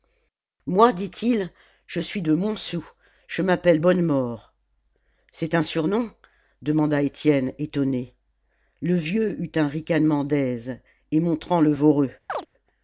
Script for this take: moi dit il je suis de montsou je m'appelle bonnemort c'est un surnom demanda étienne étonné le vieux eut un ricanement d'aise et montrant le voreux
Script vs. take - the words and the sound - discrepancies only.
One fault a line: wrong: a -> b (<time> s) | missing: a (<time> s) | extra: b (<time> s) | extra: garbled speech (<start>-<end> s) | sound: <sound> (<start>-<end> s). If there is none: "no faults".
sound: chirp (12.3-12.5 s)